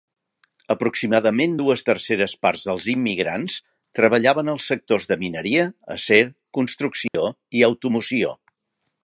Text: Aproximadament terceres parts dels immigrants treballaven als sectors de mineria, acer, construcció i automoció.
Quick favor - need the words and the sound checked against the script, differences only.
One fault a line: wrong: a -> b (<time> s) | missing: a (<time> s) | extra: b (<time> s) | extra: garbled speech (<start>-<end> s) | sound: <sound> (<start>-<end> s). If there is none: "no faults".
extra: dues (1.6 s)
sound: dropout (7.1-7.1 s)